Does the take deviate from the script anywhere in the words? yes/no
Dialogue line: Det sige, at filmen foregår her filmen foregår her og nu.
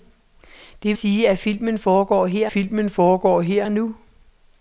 no